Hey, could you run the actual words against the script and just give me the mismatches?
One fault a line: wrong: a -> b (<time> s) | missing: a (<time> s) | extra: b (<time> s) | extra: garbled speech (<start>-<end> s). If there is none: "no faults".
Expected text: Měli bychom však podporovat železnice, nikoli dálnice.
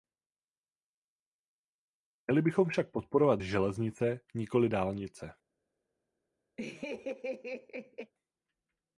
no faults